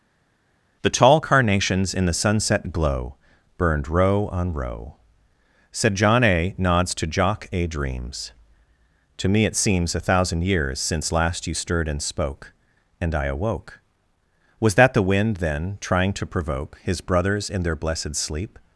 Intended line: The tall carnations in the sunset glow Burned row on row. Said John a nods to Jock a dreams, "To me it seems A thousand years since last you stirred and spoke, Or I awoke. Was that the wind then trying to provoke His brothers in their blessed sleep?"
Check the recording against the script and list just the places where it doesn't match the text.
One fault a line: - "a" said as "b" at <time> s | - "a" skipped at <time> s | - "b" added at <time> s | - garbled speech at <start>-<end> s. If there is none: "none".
- "Or" said as "And" at 13.0 s